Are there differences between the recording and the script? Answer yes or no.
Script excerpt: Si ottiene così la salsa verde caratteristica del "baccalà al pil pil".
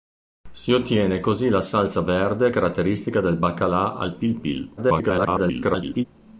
yes